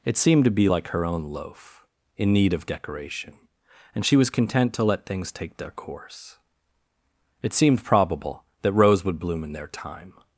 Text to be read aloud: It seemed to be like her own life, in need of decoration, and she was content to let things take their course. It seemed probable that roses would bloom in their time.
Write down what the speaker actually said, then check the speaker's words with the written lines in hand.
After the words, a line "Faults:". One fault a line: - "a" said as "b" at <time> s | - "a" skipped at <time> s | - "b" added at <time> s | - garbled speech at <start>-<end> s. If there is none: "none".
It seemed to be like her own loaf, in need of decoration, and she was content to let things take their course. It seemed probable that rose would bloom in their time.
Faults:
- "life" said as "loaf" at 1.2 s
- "roses" said as "rose" at 8.7 s